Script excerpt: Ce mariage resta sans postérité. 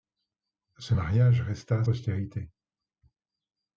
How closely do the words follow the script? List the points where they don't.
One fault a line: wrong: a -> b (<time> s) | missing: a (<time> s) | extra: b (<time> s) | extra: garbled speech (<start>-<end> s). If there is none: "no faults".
missing: sans (1.8 s)